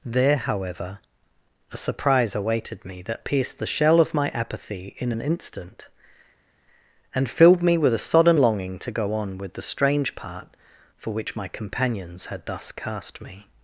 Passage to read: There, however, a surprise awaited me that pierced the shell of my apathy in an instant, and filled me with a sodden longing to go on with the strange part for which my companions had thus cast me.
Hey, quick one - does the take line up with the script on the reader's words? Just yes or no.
yes